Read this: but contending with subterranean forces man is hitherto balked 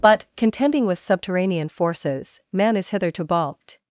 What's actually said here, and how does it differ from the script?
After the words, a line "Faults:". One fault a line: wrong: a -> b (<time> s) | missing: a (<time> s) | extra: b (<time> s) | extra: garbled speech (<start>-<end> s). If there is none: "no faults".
but contending with subterranean forces man is hitherto balked
Faults:
no faults